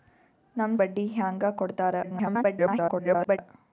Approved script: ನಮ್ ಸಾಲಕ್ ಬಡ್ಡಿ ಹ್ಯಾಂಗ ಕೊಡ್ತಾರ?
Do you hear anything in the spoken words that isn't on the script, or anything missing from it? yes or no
yes